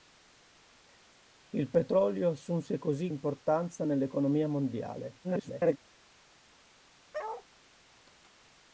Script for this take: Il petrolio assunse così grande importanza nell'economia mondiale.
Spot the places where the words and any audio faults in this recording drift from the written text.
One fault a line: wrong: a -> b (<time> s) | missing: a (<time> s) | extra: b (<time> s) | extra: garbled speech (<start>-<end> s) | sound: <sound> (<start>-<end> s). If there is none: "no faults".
missing: grande (3.1 s)
extra: garbled speech (5.2-5.8 s)
sound: bark (7.1-7.5 s)